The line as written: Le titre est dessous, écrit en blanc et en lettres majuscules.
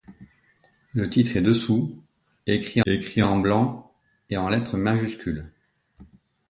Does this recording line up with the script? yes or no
no